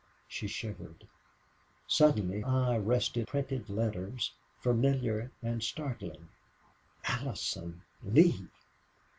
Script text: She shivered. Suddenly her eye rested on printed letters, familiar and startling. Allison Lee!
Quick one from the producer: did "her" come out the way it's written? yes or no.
no